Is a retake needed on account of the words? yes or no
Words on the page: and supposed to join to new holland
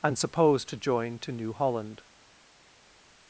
no